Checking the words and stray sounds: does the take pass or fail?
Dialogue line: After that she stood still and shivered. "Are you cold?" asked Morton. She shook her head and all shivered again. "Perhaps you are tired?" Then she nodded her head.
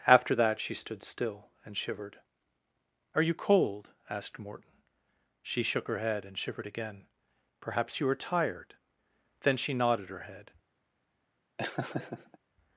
fail